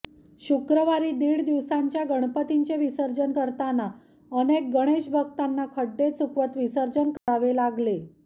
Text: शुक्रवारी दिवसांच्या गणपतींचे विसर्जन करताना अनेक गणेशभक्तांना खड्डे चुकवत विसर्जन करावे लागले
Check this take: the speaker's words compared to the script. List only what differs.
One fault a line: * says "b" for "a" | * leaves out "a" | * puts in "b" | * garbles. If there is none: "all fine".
* puts in "दीड"